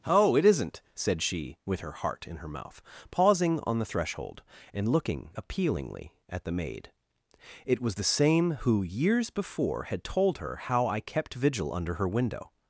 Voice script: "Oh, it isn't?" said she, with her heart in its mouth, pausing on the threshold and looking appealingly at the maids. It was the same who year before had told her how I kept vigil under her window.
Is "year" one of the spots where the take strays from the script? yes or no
yes